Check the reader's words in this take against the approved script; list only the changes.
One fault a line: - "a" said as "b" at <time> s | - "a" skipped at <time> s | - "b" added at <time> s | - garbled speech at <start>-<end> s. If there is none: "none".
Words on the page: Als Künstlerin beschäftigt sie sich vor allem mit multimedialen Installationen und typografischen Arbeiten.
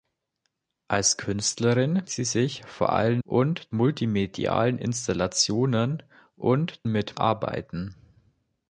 - "beschäftigt" skipped at 2.1 s
- "mit" said as "und" at 3.2 s
- "typografischen" said as "mit" at 6.9 s